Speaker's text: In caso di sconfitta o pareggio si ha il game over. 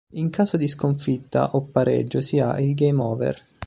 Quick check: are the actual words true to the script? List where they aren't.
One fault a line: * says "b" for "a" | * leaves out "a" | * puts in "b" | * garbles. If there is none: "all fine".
all fine